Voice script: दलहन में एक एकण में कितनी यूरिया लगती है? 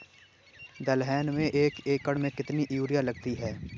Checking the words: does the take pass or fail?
pass